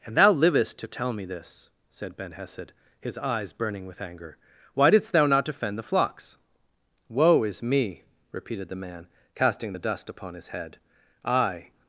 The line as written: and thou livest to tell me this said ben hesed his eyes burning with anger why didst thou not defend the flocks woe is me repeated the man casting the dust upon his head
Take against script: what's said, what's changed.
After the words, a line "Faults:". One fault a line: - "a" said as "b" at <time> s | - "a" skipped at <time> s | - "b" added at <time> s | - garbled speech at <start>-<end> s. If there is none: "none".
and thou livest to tell me this said ben hesed his eyes burning with anger why didst thou not defend the flocks woe is me repeated the man casting the dust upon his head i
Faults:
- "i" added at 11.2 s